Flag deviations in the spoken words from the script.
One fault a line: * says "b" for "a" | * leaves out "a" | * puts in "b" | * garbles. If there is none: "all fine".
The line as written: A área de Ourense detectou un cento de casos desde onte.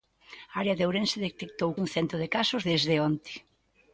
all fine